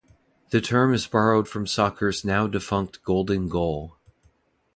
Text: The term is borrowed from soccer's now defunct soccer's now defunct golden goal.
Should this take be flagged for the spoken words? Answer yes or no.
yes